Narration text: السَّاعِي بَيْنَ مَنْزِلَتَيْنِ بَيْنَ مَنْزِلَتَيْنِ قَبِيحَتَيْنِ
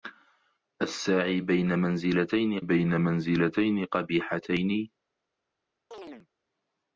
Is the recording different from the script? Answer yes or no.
no